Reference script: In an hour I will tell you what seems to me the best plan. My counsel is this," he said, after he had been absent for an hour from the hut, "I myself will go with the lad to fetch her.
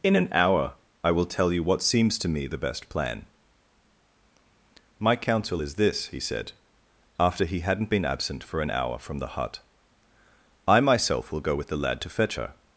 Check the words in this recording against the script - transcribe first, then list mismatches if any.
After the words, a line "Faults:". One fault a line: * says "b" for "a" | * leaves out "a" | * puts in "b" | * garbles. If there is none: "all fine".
In an hour I will tell you what seems to me the best plan. My counsel is this," he said, after he hadn't been absent for an hour from the hut, "I myself will go with the lad to fetch her.
Faults:
* says "hadn't" for "had"